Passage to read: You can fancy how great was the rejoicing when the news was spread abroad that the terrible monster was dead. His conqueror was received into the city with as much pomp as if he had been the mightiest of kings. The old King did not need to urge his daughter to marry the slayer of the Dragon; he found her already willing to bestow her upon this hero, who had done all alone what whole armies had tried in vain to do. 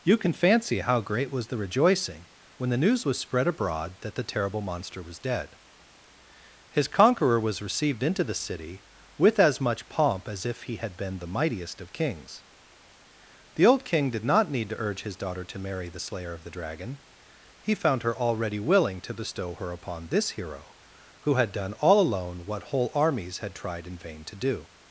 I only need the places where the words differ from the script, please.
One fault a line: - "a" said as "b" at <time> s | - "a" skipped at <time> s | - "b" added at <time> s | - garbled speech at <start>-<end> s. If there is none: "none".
none